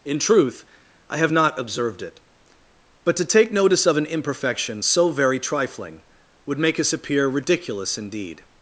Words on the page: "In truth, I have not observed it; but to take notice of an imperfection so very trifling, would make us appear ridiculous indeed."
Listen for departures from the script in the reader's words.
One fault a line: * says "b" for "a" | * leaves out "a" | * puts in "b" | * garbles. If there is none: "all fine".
all fine